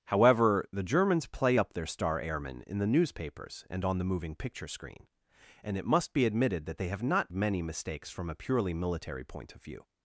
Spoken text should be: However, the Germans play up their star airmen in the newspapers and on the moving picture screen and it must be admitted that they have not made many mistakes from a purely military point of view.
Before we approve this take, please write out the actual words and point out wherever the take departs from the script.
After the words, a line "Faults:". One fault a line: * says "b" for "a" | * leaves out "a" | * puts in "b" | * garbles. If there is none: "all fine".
However, the Germans play up their star airmen in the newspapers and on the moving picture screen and it must be admitted that they have not many mistakes from a purely military point of view.
Faults:
* leaves out "made"